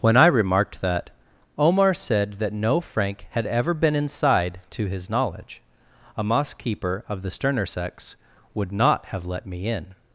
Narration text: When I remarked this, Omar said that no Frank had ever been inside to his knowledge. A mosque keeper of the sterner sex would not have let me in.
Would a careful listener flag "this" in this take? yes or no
yes